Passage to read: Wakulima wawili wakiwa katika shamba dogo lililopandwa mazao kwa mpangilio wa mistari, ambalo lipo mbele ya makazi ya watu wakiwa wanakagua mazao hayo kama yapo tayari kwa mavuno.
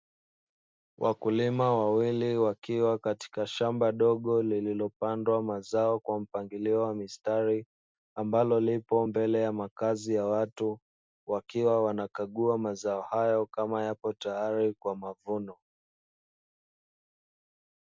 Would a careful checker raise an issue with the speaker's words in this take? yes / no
no